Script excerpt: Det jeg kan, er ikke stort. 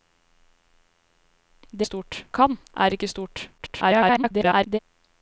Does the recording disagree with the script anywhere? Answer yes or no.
yes